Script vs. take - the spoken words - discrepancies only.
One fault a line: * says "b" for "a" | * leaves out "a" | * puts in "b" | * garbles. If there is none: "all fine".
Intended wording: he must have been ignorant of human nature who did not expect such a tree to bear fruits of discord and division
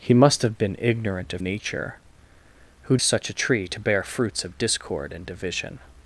* leaves out "human"
* leaves out "did not expect"